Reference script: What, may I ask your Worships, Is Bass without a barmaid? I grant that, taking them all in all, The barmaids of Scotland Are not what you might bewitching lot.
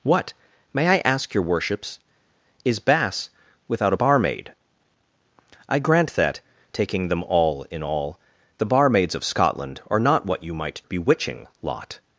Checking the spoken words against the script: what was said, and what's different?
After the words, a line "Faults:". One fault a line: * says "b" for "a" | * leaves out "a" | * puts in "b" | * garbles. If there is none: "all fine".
What, may I ask your Worships, Is Bass without a barmaid? I grant that, taking them all in all, The barmaids of Scotland Are not what you might bewitching lot.
Faults:
all fine